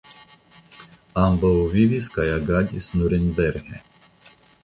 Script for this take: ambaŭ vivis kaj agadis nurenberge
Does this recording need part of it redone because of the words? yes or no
no